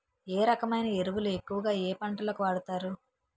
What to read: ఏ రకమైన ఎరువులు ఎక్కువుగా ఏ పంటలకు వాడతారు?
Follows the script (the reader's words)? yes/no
yes